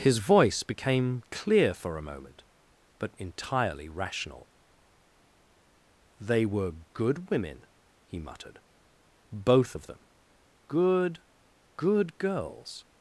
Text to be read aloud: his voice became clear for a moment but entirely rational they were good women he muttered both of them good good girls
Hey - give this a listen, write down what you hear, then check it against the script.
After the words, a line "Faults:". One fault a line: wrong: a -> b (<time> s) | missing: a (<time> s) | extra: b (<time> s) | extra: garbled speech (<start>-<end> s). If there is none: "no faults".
his voice became clear for a moment but entirely rational they were good women he muttered both of them good good girls
Faults:
no faults